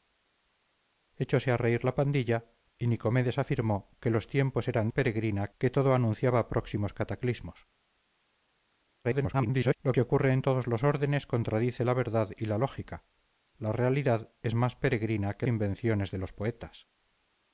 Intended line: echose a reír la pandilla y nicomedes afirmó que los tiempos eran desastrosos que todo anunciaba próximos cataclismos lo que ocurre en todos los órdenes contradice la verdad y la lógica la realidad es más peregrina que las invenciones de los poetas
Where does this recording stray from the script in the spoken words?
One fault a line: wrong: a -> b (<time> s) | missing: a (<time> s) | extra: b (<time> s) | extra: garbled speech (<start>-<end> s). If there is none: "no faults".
wrong: desastrosos -> peregrina (4.9 s)
extra: garbled speech (9.0-9.8 s)
missing: las (15.5 s)